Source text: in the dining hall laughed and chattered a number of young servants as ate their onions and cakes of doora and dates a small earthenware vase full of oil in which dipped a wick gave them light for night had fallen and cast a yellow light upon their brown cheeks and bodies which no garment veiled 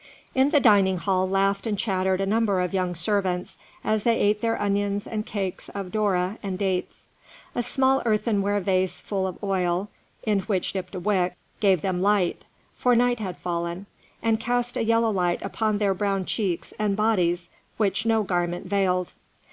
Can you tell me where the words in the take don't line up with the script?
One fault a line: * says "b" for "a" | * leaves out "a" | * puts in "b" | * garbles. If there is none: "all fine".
* puts in "they"